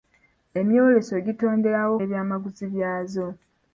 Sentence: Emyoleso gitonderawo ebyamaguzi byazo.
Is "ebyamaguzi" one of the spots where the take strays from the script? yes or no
no